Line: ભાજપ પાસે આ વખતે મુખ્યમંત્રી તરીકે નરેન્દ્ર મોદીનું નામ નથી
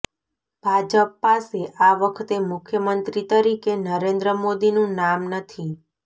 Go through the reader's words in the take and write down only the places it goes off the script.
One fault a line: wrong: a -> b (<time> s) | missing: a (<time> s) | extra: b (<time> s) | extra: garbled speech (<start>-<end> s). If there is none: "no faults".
no faults